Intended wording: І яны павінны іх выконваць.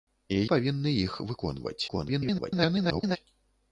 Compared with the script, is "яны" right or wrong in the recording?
wrong